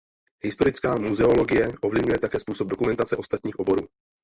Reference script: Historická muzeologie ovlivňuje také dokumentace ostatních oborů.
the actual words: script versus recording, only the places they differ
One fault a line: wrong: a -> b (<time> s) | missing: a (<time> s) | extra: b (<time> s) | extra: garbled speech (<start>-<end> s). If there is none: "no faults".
extra: způsob (2.4 s)